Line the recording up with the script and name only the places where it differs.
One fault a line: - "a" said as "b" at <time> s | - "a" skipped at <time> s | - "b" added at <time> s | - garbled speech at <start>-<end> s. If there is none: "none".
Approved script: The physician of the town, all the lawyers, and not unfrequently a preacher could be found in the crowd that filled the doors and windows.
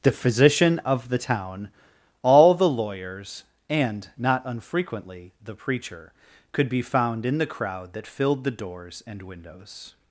- "a" said as "the" at 5.5 s